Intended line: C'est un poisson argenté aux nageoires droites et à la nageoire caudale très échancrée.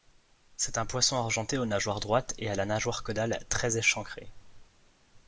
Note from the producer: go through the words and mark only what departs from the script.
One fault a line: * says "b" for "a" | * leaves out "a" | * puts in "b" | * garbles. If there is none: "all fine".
all fine